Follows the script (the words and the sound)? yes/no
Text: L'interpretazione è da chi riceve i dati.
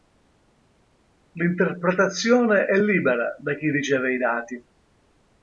no